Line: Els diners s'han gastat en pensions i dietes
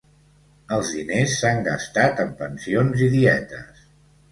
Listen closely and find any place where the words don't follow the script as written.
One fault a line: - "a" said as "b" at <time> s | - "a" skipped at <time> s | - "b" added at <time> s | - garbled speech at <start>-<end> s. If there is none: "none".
none